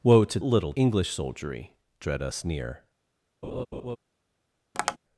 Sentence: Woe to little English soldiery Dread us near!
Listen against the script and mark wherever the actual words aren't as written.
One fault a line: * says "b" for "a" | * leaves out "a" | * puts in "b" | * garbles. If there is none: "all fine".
all fine